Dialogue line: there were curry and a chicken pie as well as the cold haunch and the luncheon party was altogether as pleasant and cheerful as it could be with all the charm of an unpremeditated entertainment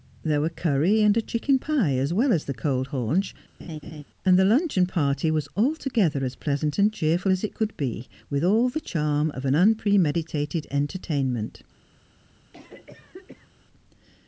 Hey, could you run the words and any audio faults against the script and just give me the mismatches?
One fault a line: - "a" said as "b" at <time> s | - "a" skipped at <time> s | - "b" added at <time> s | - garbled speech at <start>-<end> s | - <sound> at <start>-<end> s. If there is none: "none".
- laugh at 3.6-4.0 s
- cough at 12.5-13.5 s